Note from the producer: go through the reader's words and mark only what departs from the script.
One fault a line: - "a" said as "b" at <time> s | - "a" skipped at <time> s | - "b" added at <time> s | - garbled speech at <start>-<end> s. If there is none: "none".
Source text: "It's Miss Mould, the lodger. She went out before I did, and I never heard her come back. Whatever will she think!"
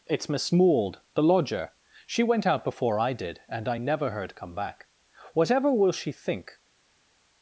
- "her" skipped at 4.4 s